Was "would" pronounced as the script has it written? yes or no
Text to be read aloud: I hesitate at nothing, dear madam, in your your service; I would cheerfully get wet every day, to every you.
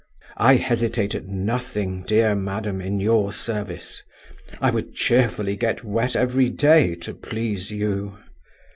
yes